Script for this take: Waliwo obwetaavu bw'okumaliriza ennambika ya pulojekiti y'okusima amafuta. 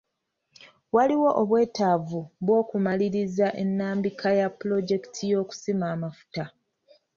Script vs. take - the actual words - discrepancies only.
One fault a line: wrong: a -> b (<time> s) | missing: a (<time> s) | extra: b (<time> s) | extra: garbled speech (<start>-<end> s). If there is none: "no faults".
no faults